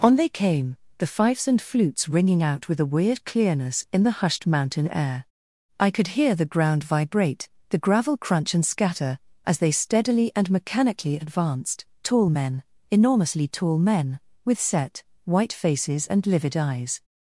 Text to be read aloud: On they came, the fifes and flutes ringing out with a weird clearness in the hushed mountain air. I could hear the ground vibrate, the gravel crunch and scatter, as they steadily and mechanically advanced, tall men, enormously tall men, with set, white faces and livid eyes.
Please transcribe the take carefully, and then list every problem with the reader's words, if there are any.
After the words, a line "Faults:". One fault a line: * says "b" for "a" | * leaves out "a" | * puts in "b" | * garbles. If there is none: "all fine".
On they came, the fifes and flutes ringing out with a weird clearness in the hushed mountain air. I could hear the ground vibrate, the gravel crunch and scatter, as they steadily and mechanically advanced, tall men, enormously tall men, with set, white faces and livid eyes.
Faults:
all fine